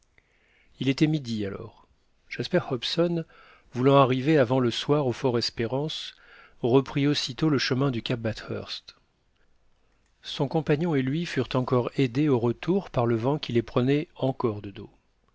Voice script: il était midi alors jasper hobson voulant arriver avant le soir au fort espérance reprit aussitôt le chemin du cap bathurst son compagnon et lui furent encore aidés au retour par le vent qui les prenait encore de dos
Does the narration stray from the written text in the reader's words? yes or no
no